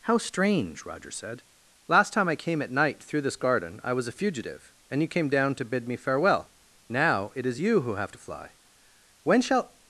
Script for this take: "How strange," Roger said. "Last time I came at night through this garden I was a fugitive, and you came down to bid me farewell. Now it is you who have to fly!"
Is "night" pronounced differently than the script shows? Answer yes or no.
no